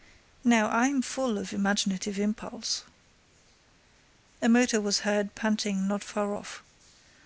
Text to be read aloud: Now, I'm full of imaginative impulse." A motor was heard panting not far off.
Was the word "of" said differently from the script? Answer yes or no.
no